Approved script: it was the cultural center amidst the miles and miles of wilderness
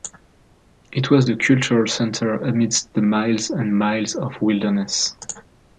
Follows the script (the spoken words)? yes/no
yes